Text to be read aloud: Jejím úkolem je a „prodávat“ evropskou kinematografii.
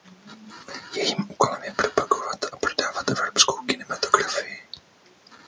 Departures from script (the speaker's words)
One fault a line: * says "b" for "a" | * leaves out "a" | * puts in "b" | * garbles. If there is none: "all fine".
* puts in "propagovat"